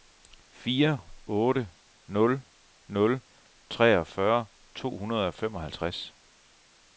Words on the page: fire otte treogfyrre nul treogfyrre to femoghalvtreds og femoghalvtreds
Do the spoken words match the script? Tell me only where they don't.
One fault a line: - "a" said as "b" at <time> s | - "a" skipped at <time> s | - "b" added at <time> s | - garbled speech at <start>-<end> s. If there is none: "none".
- "treogfyrre" said as "nul" at 2.1 s
- "femoghalvtreds" said as "hundrede" at 5.0 s